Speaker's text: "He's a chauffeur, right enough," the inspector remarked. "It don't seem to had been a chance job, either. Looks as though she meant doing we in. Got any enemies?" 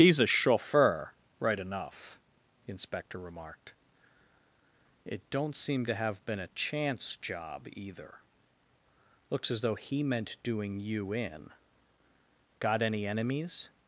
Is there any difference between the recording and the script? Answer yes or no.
yes